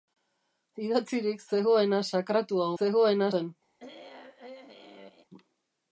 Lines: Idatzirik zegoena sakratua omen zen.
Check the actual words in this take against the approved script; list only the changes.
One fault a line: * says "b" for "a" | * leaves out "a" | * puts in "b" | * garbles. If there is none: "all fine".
* says "zegoena" for "omen"